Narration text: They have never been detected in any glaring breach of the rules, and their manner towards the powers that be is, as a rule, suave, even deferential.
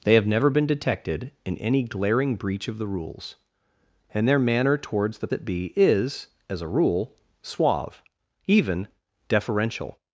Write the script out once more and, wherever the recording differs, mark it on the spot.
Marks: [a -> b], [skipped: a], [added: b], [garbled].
They have never been detected in any glaring breach of the rules, and their manner towards the [skipped: powers] that be is, as a rule, suave, even deferential.